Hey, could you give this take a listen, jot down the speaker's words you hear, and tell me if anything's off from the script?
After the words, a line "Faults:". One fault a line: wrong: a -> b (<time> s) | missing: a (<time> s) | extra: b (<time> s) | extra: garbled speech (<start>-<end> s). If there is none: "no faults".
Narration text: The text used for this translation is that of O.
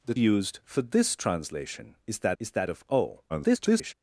The used for this translation is that is that of O. [garbled]
Faults:
missing: text (0.1 s)
extra: is that (2.4 s)
extra: garbled speech (3.3-3.9 s)